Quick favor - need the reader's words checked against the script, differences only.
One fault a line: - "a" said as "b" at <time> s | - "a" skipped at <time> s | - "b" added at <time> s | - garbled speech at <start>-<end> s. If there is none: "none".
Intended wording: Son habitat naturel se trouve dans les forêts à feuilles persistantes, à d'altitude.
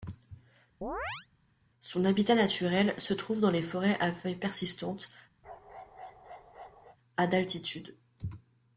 none